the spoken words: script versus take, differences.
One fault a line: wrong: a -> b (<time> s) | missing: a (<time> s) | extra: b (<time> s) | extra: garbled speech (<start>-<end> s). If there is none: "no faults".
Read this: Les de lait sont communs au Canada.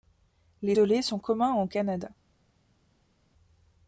no faults